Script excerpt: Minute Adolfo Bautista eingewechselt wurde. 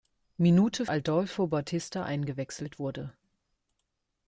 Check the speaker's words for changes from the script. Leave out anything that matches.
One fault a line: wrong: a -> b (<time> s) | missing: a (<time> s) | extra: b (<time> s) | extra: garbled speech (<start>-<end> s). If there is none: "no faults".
no faults